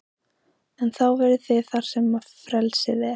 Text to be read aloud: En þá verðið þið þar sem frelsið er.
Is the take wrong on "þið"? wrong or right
right